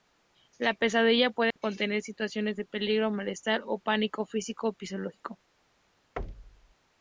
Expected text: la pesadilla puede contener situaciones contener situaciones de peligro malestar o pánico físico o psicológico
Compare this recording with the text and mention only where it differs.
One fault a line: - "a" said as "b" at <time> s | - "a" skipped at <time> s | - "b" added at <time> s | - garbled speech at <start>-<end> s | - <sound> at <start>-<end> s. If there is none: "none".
- dropout at 1.5-1.6 s
- "contener situaciones" skipped at 2.5 s
- thud at 6.2-6.7 s